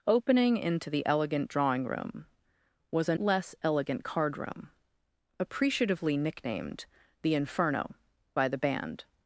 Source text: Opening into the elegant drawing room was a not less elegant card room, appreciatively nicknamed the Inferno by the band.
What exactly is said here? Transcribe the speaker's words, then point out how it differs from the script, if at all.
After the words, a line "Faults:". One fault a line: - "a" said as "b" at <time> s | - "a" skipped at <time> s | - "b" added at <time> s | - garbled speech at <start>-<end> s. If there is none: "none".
Opening into the elegant drawing room was a less elegant card room, appreciatively nicknamed the Inferno by the band.
Faults:
- "not" skipped at 3.1 s